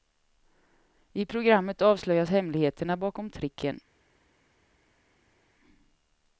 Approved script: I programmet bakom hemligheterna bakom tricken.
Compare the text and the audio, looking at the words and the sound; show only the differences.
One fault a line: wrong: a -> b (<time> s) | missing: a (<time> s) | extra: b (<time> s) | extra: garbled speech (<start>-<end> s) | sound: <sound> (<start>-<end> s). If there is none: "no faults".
wrong: bakom -> avslöjas (1.8 s)